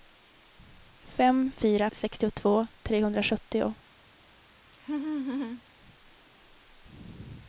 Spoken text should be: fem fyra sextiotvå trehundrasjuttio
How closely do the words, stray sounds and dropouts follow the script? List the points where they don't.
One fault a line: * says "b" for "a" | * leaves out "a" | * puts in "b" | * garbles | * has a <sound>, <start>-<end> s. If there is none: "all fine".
* has a laugh, 4.7-5.6 s